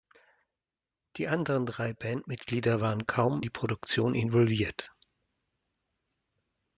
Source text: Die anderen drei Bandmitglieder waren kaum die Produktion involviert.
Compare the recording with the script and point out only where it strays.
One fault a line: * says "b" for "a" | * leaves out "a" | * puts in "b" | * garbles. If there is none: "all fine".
all fine